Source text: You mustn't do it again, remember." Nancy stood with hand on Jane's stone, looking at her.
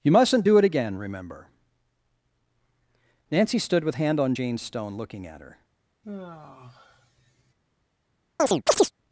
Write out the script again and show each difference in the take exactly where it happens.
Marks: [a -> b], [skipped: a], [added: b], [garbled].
You mustn't do it again, remember." Nancy stood with hand on Jane's stone, looking at her.